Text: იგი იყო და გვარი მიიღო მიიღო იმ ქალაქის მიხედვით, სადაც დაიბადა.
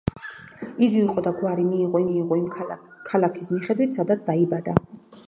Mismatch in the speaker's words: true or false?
false